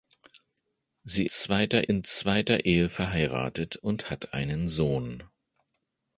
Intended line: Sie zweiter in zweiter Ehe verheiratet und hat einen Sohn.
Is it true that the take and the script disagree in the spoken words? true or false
false